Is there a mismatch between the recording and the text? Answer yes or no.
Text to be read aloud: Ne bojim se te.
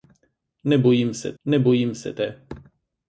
yes